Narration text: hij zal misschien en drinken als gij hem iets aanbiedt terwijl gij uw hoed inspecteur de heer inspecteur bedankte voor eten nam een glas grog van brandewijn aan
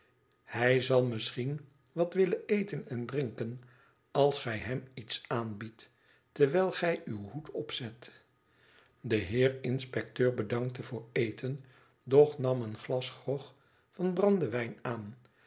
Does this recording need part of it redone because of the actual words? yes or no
yes